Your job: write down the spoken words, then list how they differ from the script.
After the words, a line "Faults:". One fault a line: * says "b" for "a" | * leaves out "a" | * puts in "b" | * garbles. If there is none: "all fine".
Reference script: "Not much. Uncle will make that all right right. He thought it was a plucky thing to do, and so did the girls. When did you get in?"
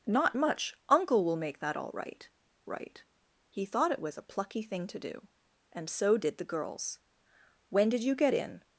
"Not much. Uncle will make that all right right. He thought it was a plucky thing to do, and so did the girls. When did you get in?"
Faults:
all fine